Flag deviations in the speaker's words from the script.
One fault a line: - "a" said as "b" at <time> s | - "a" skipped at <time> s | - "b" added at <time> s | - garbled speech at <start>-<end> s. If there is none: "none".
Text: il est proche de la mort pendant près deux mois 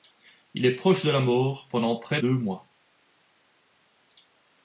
none